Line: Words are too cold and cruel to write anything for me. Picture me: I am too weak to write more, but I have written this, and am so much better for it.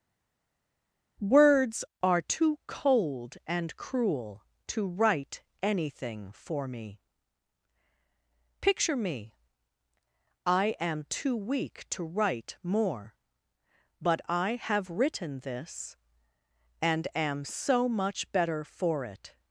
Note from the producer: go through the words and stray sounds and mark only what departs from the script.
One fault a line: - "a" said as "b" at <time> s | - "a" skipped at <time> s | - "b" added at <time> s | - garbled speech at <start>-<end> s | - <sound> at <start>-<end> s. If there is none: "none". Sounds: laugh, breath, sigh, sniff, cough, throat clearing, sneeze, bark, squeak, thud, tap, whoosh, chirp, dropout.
none